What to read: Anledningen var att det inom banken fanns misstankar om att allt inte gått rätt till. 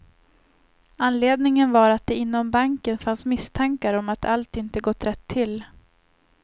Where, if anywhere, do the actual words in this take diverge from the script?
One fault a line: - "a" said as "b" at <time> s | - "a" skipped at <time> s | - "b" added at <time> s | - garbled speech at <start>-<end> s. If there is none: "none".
none